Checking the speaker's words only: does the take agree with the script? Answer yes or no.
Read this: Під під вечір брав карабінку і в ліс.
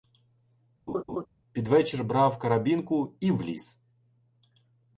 no